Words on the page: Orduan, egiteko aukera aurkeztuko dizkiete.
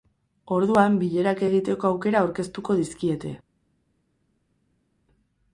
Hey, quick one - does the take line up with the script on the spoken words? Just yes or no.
no